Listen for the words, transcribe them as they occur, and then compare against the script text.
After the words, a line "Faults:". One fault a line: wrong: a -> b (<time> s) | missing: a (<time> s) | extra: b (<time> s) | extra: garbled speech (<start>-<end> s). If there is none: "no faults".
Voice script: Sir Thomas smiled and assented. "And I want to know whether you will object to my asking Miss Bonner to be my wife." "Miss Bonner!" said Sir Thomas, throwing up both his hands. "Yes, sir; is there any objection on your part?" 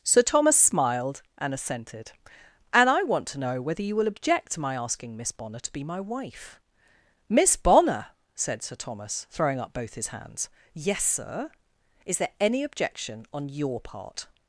Sir Thomas smiled and assented. "And I want to know whether you will object to my asking Miss Bonner to be my wife." "Miss Bonner!" said Sir Thomas, throwing up both his hands. "Yes, sir; is there any objection on your part?"
Faults:
no faults